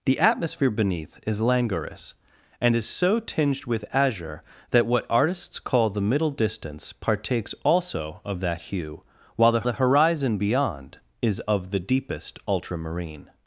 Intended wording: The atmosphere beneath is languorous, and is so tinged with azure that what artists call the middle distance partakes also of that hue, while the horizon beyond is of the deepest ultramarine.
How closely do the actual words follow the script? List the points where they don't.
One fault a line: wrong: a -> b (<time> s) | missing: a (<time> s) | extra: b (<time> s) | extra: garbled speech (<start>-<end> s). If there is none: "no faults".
extra: the (9.6 s)